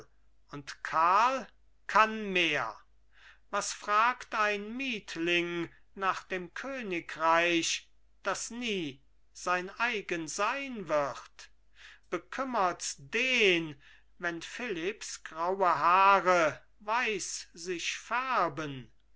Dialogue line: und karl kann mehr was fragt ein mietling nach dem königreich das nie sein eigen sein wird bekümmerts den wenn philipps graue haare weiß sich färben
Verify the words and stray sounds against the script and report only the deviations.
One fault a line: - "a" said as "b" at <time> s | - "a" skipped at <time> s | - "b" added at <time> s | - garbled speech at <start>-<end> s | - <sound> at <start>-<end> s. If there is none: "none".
none